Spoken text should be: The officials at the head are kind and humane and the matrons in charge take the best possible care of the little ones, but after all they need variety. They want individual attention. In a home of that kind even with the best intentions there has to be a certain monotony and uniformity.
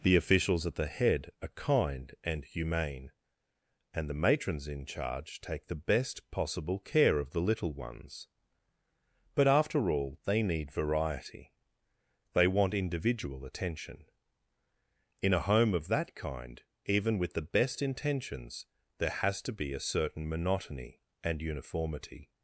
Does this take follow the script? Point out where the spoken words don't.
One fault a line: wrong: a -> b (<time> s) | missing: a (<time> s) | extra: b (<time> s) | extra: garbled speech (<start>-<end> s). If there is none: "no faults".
no faults